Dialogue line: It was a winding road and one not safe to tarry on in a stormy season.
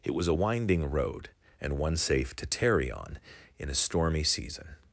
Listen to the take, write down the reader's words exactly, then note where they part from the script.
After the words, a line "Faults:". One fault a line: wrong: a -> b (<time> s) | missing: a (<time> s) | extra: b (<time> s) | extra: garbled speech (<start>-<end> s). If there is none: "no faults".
It was a winding road and one safe to tarry on in a stormy season.
Faults:
missing: not (2.0 s)